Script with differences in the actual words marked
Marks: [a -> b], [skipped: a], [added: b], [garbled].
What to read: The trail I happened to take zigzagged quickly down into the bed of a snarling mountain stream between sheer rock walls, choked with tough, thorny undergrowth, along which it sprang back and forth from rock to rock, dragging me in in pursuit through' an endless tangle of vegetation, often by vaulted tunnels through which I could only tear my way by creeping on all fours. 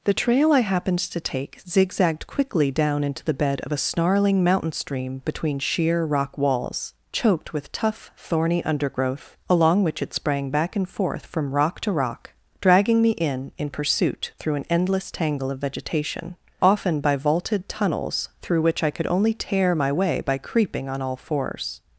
The trail I happened to take zigzagged quickly down into the bed of a snarling mountain stream between sheer rock walls, choked with tough, thorny undergrowth, along which it sprang back and forth from rock to rock, dragging me in in pursuit through' an endless tangle of vegetation, often by vaulted tunnels through which I could only tear my way by creeping on all fours.